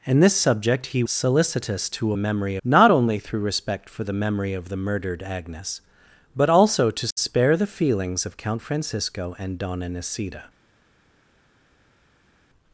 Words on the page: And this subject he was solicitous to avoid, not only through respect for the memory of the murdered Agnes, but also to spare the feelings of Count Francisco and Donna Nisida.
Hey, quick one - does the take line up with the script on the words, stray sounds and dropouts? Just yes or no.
no